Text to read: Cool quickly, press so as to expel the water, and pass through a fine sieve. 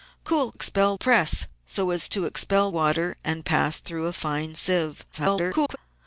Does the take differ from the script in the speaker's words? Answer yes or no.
yes